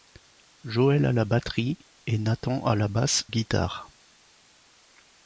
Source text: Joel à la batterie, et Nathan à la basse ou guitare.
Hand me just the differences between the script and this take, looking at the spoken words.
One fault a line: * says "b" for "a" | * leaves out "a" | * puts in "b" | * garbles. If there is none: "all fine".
* leaves out "ou"